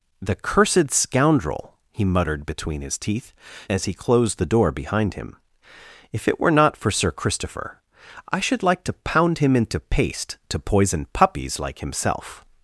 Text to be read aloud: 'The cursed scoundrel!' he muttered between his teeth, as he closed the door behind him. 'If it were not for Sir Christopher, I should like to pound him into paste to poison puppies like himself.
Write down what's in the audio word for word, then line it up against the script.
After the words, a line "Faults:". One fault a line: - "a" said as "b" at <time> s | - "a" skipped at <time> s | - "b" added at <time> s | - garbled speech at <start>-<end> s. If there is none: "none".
'The cursed scoundrel!' he muttered between his teeth, as he closed the door behind him. 'If it were not for Sir Christopher, I should like to pound him into paste to poison puppies like himself.
Faults:
none